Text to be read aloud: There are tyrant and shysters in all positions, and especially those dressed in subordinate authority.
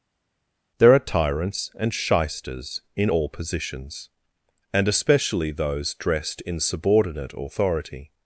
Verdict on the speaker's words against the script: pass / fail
fail